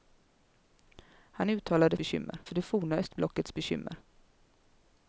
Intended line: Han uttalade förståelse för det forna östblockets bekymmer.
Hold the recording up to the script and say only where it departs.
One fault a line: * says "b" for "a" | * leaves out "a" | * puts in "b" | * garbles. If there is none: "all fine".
* says "bekymmer" for "förståelse"